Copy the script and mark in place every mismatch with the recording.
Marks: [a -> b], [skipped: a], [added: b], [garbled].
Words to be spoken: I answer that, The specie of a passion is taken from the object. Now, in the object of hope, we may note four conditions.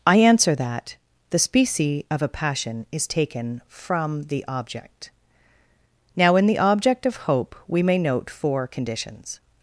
I answer that, The specie of a passion is taken from the object. Now, in the object of hope, we may note four conditions.